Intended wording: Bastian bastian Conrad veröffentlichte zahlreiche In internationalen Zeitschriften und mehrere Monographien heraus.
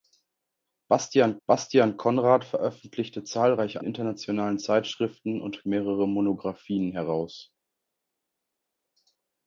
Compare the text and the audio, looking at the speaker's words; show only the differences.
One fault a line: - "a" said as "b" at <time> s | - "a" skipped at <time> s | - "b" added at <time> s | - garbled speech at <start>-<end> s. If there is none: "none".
none